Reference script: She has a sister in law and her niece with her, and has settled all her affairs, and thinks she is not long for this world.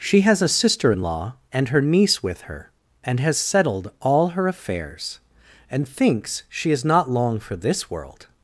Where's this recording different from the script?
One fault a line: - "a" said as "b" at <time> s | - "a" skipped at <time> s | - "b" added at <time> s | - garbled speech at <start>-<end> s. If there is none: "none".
none